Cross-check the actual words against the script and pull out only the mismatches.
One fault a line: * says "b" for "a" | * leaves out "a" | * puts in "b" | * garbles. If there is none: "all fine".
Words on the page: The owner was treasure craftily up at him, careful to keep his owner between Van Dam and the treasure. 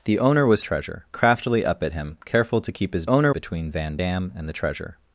all fine